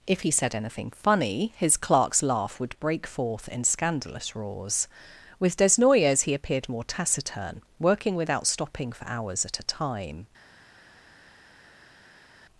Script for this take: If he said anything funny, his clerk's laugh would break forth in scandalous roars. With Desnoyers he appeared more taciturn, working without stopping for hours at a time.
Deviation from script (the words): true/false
false